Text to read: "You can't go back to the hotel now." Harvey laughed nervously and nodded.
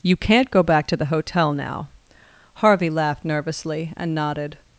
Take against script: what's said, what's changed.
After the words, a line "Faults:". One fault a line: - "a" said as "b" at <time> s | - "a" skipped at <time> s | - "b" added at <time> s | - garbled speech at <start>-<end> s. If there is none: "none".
"You can't go back to the hotel now." Harvey laughed nervously and nodded.
Faults:
none